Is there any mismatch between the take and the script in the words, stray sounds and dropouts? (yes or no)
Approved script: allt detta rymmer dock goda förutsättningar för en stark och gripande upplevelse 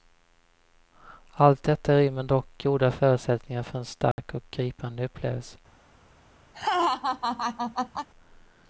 yes